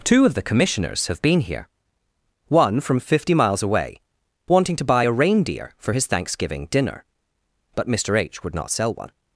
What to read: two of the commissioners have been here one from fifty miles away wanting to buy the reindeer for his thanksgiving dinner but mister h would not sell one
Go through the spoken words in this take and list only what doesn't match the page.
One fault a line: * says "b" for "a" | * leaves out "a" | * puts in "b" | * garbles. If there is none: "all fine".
* says "a" for "the"